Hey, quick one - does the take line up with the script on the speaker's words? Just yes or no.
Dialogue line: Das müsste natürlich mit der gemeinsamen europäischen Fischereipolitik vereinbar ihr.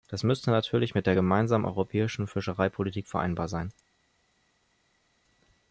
no